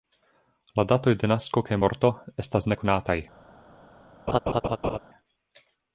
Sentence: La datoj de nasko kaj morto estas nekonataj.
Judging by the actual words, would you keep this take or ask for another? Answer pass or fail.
pass